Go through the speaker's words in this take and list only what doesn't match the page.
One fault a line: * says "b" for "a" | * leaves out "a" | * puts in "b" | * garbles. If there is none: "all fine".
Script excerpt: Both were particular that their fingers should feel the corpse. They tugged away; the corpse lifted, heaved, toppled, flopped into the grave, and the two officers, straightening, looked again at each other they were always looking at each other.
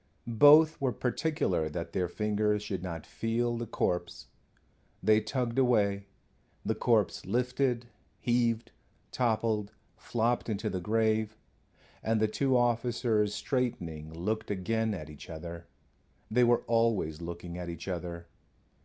* puts in "not"